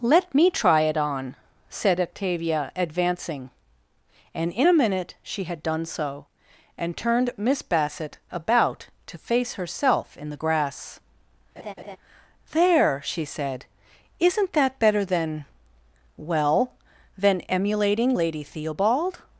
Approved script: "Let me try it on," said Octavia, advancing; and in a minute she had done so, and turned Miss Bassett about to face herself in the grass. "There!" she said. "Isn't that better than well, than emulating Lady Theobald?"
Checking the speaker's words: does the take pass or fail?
pass